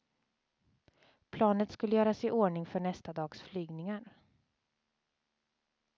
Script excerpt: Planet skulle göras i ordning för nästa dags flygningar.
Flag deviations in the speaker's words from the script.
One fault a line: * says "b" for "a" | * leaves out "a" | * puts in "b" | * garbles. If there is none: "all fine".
all fine